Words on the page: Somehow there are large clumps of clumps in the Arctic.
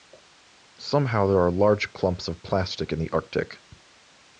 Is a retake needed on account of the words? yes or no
yes